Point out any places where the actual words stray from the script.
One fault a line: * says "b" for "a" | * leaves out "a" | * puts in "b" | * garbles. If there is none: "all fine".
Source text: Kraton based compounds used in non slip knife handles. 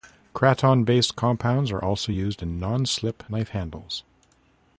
* puts in "are also"